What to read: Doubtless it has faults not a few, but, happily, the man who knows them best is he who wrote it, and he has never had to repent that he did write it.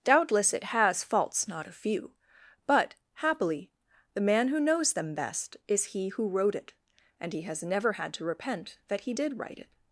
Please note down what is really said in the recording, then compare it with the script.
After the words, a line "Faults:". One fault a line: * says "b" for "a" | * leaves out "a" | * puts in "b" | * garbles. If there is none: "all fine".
Doubtless it has faults not a few, but, happily, the man who knows them best is he who wrote it, and he has never had to repent that he did write it.
Faults:
all fine